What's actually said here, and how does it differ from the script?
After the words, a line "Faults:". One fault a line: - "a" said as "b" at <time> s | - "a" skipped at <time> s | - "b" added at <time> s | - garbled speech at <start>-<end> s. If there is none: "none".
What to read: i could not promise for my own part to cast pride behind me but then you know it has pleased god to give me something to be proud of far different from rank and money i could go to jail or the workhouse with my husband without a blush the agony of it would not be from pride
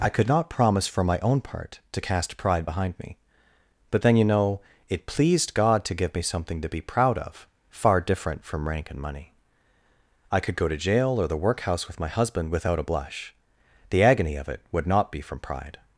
i could not promise for my own part to cast pride behind me but then you know it pleased god to give me something to be proud of far different from rank and money i could go to jail or the workhouse with my husband without a blush the agony of it would not be from pride
Faults:
- "has" skipped at 5.1 s